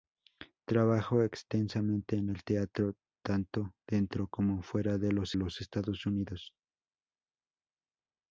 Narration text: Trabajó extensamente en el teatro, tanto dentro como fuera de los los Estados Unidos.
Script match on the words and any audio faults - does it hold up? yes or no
yes